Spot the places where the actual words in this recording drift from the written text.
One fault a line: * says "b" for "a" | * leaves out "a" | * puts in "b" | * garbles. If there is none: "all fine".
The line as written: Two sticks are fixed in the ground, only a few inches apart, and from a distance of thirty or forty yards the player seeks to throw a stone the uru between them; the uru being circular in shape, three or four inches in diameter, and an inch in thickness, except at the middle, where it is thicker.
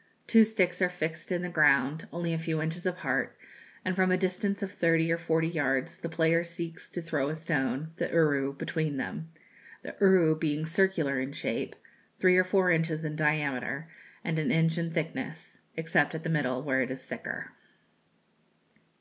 all fine